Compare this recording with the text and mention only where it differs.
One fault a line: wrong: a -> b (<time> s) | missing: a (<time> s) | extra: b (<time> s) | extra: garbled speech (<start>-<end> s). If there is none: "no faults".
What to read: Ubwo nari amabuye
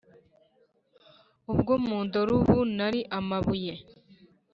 extra: mundora ubu (1.9 s)